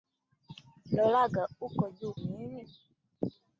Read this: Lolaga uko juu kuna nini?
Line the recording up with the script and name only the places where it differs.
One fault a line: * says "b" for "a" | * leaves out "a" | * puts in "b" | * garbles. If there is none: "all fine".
* leaves out "kuna"